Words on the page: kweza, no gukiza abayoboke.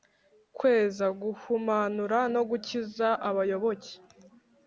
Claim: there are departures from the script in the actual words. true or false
true